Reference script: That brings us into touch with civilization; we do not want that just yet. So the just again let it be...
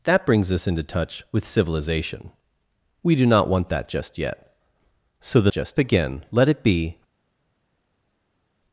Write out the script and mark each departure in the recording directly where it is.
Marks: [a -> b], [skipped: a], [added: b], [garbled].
That brings us into touch with civilization; we do not want that just yet. So the just again let it be...